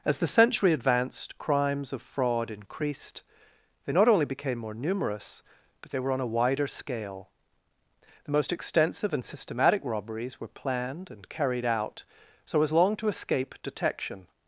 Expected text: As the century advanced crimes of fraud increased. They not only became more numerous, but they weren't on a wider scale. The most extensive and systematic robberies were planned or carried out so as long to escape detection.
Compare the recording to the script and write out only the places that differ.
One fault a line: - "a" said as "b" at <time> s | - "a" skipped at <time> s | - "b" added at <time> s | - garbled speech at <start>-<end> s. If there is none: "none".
- "weren't" said as "were" at 6.0 s
- "or" said as "and" at 11.1 s